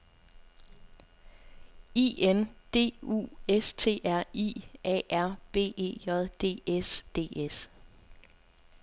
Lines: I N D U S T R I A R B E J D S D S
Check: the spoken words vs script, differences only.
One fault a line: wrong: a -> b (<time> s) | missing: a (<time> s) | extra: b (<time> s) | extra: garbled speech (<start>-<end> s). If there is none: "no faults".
no faults